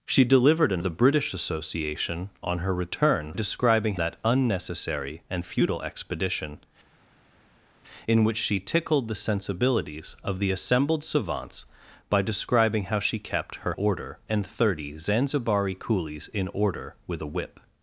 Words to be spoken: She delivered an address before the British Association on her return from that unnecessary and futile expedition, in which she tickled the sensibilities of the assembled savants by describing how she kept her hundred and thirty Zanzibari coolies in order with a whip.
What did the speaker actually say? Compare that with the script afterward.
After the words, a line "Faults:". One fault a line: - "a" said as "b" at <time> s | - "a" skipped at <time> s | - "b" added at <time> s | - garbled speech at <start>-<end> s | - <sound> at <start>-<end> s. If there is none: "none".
She delivered an the British Association on her return describing that unnecessary and futile expedition, in which she tickled the sensibilities of the assembled savants by describing how she kept her order and thirty Zanzibari coolies in order with a whip.
Faults:
- "address before" skipped at 0.8 s
- "from" said as "describing" at 3.3 s
- "hundred" said as "order" at 13.7 s